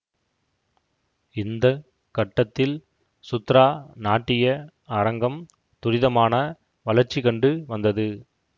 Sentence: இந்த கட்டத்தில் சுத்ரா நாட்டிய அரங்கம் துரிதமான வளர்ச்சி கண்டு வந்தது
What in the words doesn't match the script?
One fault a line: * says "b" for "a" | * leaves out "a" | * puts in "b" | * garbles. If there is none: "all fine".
all fine